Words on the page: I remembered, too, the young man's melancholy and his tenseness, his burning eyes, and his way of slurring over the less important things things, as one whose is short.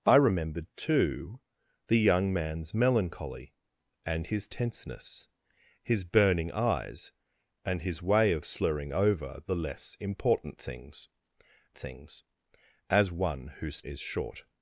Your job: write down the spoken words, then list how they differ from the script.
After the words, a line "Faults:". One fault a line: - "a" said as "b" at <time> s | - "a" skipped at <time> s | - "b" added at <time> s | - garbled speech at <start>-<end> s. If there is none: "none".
I remembered, too, the young man's melancholy and his tenseness, his burning eyes, and his way of slurring over the less important things things, as one whose is short.
Faults:
none